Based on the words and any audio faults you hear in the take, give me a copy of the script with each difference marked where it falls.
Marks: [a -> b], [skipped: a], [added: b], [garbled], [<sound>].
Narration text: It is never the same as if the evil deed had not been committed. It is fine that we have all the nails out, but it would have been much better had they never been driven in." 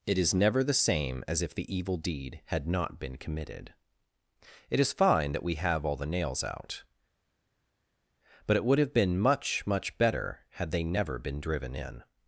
It is never the same as if the evil deed had not been committed. It is fine that we have all the nails out, but it would have been much [added: much] better had they never been driven in."